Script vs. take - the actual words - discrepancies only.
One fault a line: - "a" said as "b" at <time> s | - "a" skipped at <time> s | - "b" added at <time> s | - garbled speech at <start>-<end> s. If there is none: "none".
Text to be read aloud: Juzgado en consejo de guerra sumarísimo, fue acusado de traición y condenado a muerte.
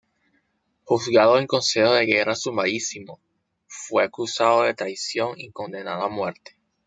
none